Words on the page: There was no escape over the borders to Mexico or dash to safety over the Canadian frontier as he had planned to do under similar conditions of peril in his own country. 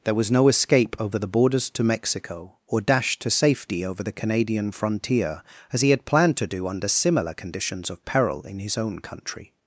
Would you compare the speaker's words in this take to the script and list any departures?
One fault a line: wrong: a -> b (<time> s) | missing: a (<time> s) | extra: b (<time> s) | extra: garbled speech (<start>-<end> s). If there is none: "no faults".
no faults